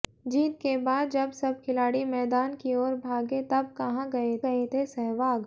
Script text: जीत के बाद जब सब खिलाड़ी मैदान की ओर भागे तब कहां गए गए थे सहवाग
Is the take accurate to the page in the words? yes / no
yes